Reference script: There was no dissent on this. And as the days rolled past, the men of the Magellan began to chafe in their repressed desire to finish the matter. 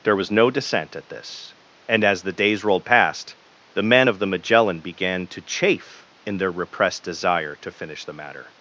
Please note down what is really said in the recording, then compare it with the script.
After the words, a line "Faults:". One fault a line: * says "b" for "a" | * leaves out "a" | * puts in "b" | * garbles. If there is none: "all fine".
There was no dissent at this. And as the days rolled past, the men of the Magellan began to chafe in their repressed desire to finish the matter.
Faults:
* says "at" for "on"